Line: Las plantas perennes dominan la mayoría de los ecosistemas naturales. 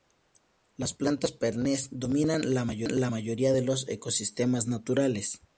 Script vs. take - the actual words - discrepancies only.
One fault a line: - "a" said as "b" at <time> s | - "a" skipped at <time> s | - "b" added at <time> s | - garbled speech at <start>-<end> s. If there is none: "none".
none